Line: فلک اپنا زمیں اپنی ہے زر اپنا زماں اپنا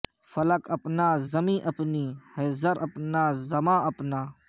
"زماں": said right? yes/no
yes